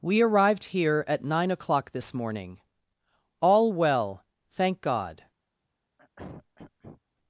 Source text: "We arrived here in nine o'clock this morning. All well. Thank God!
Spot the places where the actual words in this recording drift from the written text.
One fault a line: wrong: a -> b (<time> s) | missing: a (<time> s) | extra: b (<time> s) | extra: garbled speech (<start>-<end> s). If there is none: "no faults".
wrong: in -> at (1.1 s)